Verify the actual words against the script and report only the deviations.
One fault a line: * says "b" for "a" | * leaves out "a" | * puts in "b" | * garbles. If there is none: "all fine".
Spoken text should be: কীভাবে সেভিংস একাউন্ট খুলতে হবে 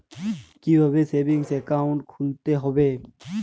all fine